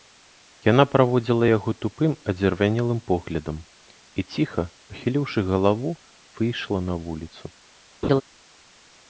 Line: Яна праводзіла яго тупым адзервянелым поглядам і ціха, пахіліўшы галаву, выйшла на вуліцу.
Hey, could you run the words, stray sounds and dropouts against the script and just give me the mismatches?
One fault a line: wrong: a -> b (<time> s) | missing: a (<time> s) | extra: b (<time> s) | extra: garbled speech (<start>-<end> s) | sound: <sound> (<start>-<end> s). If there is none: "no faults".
sound: laugh (8.0-8.2 s)